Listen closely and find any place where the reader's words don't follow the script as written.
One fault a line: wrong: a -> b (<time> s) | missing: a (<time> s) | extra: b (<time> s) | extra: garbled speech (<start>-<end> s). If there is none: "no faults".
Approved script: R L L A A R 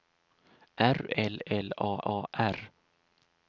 no faults